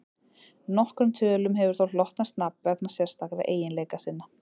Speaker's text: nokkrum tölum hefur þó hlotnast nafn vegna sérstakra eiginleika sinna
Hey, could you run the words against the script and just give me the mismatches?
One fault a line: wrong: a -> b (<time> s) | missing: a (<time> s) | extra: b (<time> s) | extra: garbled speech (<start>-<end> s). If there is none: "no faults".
no faults